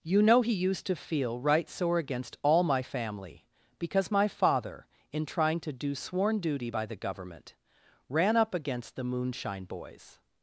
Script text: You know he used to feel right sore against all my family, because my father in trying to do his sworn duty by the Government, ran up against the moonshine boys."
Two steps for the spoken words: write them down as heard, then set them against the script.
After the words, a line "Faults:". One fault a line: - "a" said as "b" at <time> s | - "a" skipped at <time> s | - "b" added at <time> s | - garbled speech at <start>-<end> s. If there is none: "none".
You know he used to feel right sore against all my family, because my father in trying to do sworn duty by the Government, ran up against the moonshine boys."
Faults:
- "his" skipped at 5.9 s